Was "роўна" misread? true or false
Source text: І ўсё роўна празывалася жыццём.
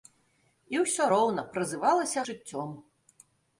false